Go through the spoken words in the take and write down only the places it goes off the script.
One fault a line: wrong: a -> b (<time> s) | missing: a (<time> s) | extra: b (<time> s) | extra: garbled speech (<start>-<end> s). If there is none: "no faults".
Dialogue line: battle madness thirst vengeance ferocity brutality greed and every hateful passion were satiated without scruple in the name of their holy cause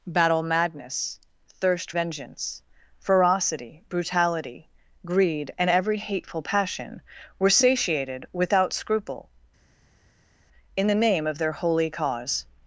no faults